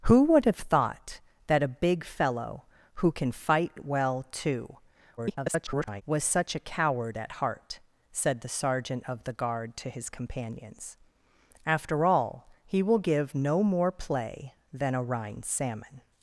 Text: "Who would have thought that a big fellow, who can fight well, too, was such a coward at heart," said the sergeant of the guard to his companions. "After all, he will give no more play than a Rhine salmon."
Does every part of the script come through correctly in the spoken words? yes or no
no